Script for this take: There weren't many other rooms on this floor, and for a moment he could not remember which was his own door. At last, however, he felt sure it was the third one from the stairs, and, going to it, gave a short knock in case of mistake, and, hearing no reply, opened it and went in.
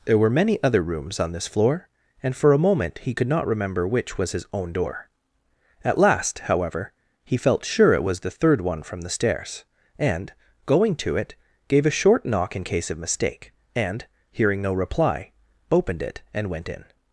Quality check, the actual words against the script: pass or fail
fail